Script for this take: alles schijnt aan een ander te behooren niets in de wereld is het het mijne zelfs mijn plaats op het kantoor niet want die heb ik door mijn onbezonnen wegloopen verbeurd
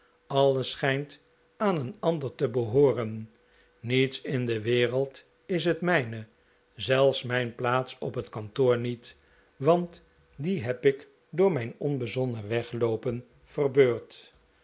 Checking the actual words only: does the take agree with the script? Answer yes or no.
no